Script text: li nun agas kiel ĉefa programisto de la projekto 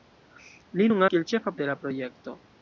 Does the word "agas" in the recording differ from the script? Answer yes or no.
yes